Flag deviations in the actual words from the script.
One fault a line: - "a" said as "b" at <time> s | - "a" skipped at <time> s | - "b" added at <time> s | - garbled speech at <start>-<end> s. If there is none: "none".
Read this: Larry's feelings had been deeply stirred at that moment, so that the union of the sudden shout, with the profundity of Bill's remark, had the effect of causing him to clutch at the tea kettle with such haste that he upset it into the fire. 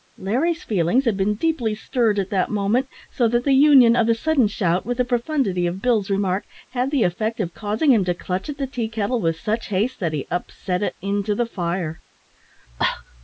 none